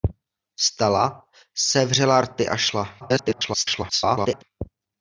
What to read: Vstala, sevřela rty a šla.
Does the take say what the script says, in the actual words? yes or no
no